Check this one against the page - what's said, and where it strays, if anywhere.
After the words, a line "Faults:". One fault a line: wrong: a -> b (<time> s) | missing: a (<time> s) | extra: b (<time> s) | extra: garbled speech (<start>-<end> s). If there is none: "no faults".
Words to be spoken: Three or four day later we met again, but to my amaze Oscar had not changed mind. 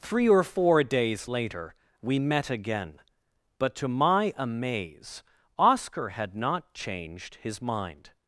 Three or four days later we met again, but to my amaze Oscar had not changed his mind.
Faults:
wrong: day -> days (0.8 s)
extra: his (7.4 s)